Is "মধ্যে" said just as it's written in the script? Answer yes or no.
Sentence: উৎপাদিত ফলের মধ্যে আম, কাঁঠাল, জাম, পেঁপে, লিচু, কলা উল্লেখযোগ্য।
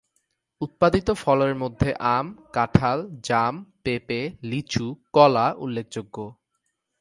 yes